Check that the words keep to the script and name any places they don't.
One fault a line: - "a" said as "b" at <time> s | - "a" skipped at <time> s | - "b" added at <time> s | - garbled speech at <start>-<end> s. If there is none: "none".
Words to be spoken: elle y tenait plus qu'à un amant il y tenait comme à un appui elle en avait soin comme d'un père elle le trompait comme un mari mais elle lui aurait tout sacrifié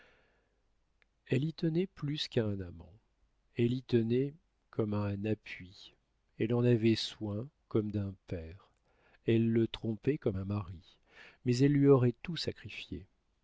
- "il" said as "elle" at 3.5 s